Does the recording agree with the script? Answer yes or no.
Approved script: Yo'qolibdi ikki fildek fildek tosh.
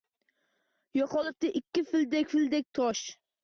yes